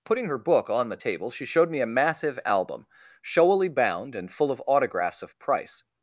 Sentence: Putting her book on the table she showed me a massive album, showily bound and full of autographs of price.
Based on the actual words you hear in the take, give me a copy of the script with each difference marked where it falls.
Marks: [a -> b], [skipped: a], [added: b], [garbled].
Putting her book on the table she showed me a massive album, showily bound and full of autographs of price.